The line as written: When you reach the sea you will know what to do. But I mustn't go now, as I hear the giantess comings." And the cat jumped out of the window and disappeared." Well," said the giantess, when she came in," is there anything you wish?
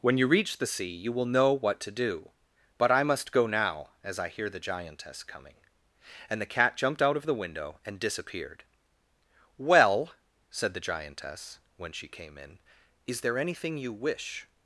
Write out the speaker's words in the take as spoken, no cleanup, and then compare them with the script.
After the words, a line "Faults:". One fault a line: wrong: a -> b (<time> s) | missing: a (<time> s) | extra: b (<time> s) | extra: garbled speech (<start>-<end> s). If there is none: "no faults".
When you reach the sea you will know what to do. But I must go now, as I hear the giantess coming." And the cat jumped out of the window and disappeared." Well," said the giantess, when she came in," is there anything you wish?
Faults:
wrong: mustn't -> must (3.0 s)
wrong: comings -> coming (5.2 s)